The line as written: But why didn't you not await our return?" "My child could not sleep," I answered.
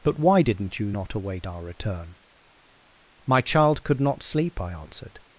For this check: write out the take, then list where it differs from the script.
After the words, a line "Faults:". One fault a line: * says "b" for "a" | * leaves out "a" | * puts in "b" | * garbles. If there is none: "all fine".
But why didn't you not await our return?" "My child could not sleep," I answered.
Faults:
all fine